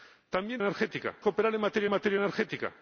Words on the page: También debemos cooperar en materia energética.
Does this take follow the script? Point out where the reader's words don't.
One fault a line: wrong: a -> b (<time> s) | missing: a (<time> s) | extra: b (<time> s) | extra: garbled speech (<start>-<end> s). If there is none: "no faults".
wrong: debemos -> energética (0.6 s)
extra: materia (1.9 s)